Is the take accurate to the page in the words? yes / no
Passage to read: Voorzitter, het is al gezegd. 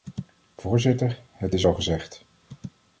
yes